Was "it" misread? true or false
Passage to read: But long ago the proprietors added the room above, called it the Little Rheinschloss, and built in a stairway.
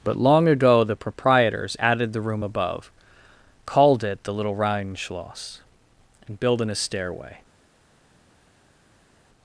false